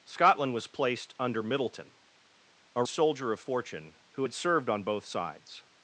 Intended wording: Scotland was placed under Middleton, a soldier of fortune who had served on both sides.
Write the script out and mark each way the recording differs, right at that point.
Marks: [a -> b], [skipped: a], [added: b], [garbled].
Scotland was placed under Middleton, a soldier of fortune who had served on both sides.